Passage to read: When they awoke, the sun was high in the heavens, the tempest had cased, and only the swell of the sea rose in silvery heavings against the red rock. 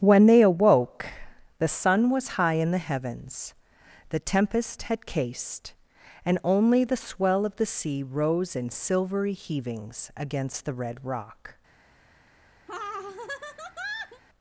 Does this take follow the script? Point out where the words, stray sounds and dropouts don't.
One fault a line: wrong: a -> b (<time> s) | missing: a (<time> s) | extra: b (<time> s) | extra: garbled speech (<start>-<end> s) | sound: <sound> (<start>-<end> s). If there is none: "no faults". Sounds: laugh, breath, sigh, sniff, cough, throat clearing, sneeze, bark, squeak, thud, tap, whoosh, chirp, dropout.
sound: laugh (12.7-14.2 s)